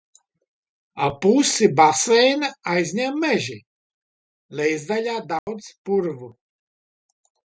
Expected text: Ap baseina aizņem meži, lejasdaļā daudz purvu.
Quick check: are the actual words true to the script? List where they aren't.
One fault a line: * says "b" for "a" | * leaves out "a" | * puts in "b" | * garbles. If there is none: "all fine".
* puts in "pusi"